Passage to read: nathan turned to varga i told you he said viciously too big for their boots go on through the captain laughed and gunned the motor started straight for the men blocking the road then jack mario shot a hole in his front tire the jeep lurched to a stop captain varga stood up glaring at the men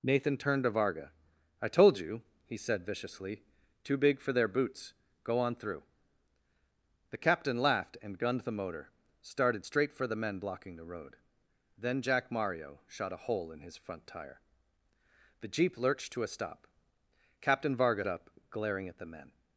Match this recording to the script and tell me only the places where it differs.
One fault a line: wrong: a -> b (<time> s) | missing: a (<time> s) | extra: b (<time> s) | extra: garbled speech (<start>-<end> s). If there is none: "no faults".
missing: stood (18.0 s)